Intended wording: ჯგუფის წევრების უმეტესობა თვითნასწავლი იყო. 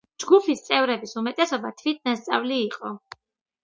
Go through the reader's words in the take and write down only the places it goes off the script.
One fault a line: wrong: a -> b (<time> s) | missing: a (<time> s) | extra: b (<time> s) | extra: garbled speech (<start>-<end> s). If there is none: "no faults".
no faults